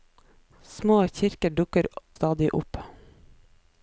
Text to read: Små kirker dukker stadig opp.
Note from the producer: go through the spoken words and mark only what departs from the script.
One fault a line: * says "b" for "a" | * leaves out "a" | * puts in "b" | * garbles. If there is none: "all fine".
all fine